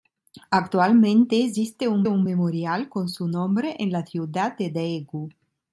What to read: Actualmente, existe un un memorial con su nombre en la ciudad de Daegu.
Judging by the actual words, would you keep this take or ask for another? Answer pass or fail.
pass